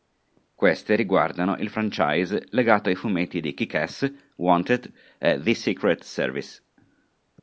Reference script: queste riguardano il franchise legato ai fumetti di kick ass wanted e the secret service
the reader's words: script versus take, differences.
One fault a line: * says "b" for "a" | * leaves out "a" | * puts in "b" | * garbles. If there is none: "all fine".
all fine